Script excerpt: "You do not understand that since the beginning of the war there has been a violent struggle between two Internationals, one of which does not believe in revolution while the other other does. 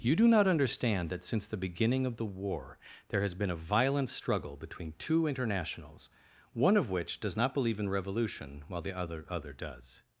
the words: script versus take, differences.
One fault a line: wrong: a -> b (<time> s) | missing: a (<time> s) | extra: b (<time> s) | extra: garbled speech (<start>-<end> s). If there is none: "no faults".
no faults